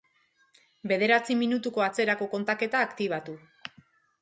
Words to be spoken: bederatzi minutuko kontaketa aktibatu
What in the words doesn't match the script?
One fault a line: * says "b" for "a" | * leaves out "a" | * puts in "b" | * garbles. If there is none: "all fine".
* puts in "atzerako"